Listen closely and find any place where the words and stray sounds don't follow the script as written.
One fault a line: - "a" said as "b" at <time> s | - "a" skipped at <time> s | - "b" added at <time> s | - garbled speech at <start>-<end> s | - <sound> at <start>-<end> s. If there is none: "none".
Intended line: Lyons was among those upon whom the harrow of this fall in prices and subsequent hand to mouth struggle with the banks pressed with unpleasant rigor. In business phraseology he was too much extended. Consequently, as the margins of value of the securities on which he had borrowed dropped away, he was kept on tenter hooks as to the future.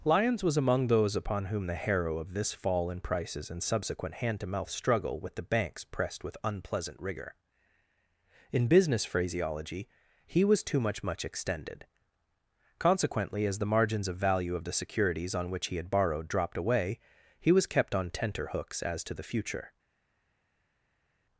- "much" added at 11.0 s